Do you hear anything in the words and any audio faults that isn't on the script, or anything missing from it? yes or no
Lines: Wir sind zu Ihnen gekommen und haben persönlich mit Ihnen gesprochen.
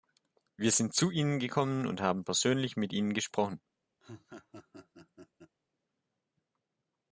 yes